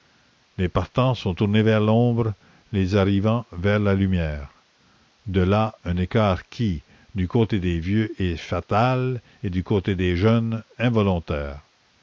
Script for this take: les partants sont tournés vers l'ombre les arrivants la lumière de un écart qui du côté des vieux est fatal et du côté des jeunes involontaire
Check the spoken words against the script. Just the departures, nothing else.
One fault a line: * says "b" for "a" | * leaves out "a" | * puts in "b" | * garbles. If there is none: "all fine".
* puts in "vers"
* puts in "là"